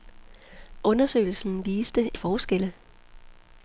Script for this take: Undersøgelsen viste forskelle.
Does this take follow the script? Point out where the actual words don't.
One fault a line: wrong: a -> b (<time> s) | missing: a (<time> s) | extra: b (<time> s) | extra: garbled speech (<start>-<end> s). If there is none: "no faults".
no faults